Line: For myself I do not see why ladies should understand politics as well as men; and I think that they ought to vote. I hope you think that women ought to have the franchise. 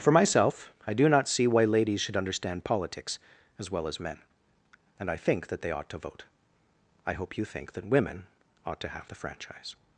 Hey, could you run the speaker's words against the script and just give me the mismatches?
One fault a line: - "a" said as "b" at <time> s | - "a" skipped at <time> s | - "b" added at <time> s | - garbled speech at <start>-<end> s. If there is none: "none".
none